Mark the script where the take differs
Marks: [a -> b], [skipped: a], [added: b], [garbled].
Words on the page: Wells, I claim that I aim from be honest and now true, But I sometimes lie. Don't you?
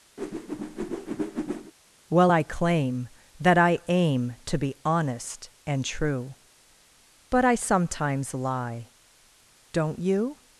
[Wells, -> Well] I claim that I aim [from -> to] be honest and [skipped: now] true, But I sometimes lie. Don't you?